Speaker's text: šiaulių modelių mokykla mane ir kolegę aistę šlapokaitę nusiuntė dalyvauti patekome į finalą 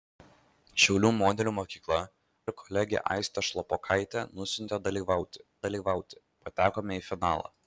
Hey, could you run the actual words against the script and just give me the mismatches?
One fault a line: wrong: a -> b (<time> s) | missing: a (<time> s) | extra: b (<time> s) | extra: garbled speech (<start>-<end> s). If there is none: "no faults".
missing: mane (2.0 s)
extra: dalyvauti (5.7 s)